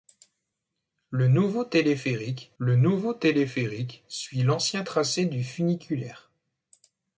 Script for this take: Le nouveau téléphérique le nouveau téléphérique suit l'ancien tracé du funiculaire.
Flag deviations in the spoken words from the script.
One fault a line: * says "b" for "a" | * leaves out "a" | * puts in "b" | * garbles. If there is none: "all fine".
all fine